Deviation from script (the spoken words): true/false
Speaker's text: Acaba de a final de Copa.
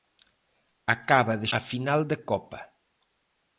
false